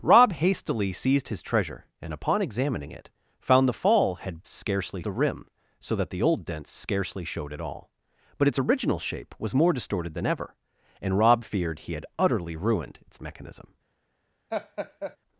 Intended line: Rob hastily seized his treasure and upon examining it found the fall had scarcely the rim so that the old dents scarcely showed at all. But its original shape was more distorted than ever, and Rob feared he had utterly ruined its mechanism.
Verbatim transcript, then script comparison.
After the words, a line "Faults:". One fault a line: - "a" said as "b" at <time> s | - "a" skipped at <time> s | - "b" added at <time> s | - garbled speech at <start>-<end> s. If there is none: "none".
Rob hastily seized his treasure and upon examining it found the fall had scarcely the rim so that the old dents scarcely showed at all. But its original shape was more distorted than ever, and Rob feared he had utterly ruined its mechanism.
Faults:
none